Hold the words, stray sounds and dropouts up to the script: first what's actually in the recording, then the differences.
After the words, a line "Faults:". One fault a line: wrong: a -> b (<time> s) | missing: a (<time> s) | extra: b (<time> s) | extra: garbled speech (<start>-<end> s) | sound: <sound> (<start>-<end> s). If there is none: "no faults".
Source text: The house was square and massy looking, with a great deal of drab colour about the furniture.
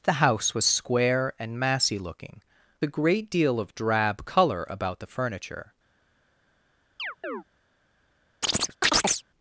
The house was square and massy looking, a great deal of drab colour about the furniture.
Faults:
missing: with (2.4 s)
sound: chirp (7.0-7.4 s)
sound: chirp (8.4-9.2 s)